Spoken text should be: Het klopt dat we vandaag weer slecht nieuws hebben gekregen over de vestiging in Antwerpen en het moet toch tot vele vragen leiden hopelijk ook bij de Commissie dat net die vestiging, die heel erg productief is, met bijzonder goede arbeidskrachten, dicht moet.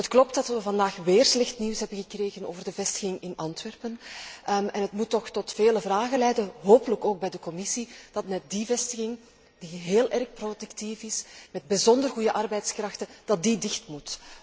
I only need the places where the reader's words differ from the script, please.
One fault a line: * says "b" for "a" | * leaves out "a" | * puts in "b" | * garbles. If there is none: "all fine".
all fine